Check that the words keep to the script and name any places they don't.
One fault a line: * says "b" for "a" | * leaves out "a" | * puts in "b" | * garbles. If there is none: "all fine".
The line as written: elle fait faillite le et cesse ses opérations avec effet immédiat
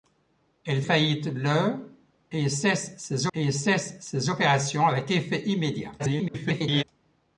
* leaves out "fait"
* puts in "et cesse ses"
* garbles